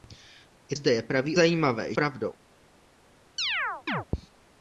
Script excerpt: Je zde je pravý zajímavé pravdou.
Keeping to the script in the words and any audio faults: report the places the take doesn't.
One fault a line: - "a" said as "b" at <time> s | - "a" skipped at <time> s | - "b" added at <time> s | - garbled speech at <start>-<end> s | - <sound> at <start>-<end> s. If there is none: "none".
- chirp at 3.4-4.1 s